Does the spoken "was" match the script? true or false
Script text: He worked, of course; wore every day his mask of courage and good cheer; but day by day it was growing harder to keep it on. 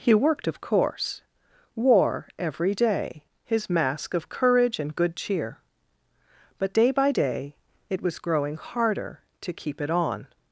true